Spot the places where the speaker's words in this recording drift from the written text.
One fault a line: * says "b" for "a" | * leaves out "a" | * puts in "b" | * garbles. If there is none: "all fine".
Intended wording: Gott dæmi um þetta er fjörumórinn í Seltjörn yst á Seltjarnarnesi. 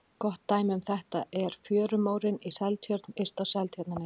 all fine